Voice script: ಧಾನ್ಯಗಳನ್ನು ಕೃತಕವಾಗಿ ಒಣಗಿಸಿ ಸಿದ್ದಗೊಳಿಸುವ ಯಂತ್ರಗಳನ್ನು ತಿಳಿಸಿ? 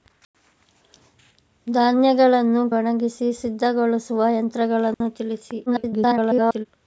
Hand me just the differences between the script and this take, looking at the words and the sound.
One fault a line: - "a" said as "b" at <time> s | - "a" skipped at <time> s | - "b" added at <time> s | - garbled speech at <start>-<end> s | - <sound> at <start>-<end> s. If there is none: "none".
- "ಕೃತಕವಾಗಿ" skipped at 2.7 s
- dropout at 4.9-5.0 s
- garbled speech at 5.7-6.7 s